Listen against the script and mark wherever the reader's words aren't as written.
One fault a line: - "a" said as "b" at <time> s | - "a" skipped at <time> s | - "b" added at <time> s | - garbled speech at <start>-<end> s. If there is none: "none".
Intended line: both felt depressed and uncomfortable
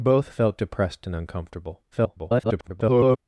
- garbled speech at 1.9-3.2 s